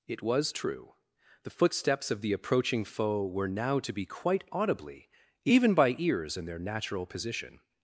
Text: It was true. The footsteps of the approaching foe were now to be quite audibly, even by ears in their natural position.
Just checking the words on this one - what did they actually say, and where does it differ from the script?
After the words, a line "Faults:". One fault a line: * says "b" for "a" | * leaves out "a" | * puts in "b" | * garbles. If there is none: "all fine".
It was true. The footsteps of the approaching foe were now to be quite audibly, even by ears in their natural position.
Faults:
all fine